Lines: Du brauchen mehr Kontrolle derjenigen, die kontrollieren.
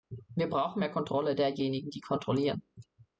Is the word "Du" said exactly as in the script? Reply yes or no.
no